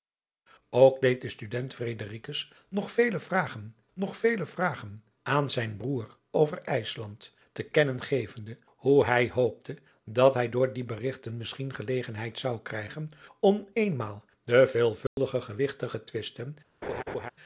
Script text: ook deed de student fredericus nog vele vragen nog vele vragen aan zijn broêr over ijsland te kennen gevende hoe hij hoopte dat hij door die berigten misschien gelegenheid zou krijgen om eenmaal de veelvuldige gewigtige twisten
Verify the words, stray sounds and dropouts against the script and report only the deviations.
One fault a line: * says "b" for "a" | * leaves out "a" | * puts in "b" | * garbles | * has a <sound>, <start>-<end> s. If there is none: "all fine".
* has a dropout, 15.1-15.2 s
* has a laugh, 16.8-17.3 s